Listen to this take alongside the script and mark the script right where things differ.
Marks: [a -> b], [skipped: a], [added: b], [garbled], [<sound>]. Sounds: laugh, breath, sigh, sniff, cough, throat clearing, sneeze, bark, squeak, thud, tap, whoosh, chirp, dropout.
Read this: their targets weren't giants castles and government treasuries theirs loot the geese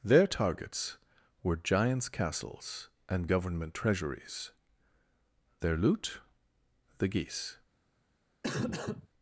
their targets [weren't -> were] giants castles and government treasuries [theirs -> their] loot the geese [cough]